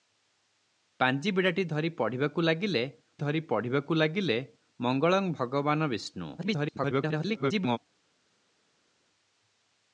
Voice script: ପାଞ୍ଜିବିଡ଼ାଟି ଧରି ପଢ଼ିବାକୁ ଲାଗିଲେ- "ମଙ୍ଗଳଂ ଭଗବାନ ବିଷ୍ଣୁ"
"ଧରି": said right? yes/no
yes